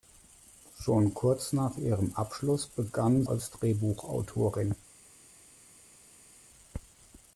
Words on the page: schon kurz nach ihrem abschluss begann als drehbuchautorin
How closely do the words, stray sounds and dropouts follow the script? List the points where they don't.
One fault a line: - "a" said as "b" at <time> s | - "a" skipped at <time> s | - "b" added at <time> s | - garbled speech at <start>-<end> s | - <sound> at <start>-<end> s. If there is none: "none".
none